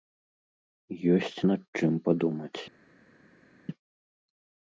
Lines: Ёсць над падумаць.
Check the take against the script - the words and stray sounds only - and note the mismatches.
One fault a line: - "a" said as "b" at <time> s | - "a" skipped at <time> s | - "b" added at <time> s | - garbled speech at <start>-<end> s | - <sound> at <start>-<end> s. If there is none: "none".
- "чым" added at 1.8 s